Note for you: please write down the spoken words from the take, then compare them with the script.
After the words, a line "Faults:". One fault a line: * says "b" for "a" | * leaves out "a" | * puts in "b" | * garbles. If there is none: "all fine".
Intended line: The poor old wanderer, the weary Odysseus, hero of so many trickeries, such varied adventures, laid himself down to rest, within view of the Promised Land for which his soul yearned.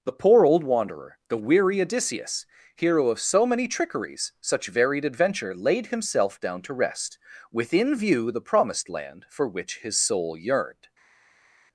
The poor old wanderer, the weary Odysseus, hero of so many trickeries, such varied adventure, laid himself down to rest, within view the Promised Land for which his soul yearned.
Faults:
* says "adventure" for "adventures"
* leaves out "of"